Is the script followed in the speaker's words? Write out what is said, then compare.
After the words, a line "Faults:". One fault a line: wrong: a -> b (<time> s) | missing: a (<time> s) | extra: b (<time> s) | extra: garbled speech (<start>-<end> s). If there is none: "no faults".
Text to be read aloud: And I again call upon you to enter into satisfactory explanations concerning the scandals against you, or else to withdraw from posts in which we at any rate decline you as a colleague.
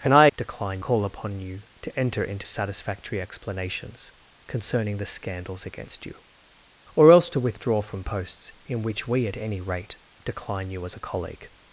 And I decline call upon you to enter into satisfactory explanations concerning the scandals against you, or else to withdraw from posts in which we at any rate decline you as a colleague.
Faults:
wrong: again -> decline (0.4 s)